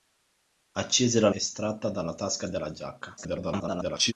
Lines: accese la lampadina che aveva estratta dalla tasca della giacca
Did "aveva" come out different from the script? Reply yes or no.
yes